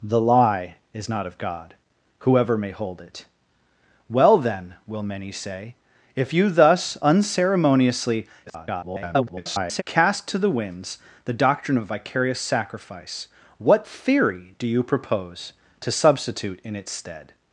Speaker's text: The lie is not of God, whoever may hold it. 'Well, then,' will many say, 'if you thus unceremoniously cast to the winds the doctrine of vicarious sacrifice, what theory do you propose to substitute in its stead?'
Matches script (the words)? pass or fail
fail